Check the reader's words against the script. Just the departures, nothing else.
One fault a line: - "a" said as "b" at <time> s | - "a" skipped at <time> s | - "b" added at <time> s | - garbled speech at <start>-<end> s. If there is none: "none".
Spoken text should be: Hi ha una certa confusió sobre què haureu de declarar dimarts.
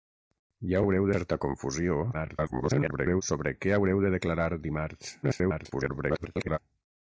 - "una" said as "haureu" at 0.8 s
- garbled speech at 2.1-3.2 s
- garbled speech at 5.2-6.6 s